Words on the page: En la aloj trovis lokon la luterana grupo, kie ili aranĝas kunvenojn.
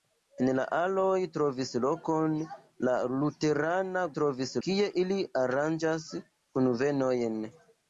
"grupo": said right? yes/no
no